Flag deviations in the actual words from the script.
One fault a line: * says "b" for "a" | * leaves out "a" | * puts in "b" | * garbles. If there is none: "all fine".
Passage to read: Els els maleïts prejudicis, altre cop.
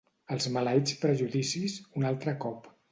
* leaves out "els"
* puts in "un"